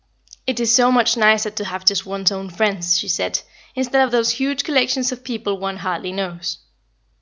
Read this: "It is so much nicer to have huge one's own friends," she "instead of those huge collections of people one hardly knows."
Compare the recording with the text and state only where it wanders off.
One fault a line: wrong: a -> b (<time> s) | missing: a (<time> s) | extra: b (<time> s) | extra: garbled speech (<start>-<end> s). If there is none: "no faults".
wrong: huge -> just (1.9 s)
extra: said (3.1 s)